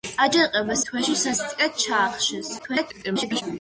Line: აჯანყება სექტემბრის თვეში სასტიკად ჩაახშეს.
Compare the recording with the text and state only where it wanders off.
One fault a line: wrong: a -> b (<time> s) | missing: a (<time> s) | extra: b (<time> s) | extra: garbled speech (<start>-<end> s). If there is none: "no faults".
missing: სექტემბრის (0.8 s)
extra: garbled speech (2.6-3.4 s)